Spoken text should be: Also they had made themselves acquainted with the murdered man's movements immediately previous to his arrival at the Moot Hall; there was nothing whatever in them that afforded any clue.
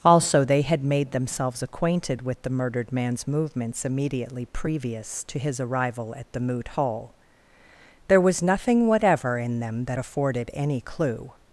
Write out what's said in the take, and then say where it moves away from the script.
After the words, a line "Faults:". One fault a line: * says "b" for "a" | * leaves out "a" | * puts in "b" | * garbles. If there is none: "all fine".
Also they had made themselves acquainted with the murdered man's movements immediately previous to his arrival at the Moot Hall; there was nothing whatever in them that afforded any clue.
Faults:
all fine